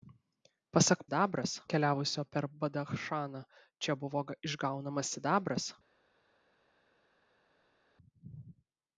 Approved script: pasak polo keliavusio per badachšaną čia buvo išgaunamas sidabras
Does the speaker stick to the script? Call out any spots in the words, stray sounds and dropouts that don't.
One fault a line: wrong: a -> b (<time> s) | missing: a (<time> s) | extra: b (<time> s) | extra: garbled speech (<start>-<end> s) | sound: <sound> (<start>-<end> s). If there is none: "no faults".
wrong: polo -> sidabras (1.0 s)